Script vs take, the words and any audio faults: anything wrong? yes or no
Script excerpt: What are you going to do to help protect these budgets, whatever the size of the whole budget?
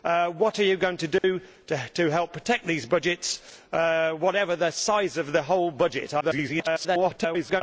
yes